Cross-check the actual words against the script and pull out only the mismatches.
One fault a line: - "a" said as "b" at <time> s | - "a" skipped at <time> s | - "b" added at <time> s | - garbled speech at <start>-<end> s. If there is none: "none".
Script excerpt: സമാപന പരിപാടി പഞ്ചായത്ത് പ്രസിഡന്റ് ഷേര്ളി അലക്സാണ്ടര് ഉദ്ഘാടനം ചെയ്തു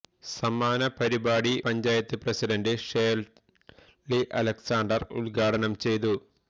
none